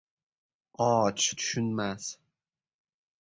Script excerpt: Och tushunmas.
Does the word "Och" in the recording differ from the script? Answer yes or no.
no